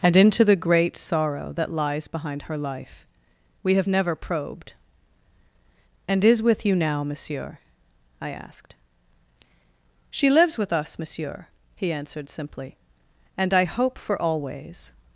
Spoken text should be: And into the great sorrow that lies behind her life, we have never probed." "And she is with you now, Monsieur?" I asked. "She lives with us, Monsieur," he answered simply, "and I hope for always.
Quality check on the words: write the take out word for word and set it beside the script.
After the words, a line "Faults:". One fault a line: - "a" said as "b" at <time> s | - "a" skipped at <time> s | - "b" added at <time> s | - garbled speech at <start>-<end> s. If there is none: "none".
And into the great sorrow that lies behind her life, we have never probed." "And is with you now, Monsieur?" I asked. "She lives with us, Monsieur," he answered simply, "and I hope for always.
Faults:
- "she" skipped at 6.2 s